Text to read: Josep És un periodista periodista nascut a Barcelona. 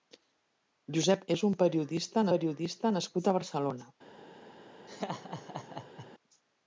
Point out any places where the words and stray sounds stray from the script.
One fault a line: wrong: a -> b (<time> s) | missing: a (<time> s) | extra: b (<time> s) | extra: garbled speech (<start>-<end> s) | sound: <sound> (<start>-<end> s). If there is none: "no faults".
sound: laugh (4.9-6.1 s)